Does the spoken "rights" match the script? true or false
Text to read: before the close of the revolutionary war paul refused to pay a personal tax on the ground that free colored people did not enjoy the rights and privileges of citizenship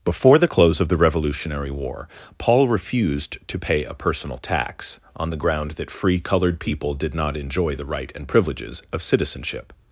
false